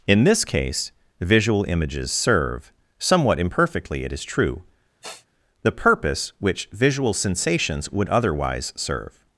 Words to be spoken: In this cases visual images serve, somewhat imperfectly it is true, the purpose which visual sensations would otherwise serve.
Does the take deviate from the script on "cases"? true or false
true